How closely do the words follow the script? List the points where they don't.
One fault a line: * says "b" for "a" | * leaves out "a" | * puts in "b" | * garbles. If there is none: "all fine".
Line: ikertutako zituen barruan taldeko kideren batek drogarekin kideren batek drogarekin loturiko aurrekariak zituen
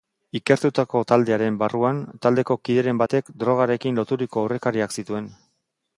* says "taldearen" for "zituen"
* leaves out "kideren batek drogarekin"